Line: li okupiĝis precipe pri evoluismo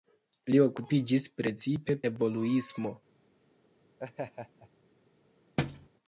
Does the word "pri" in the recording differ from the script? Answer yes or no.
yes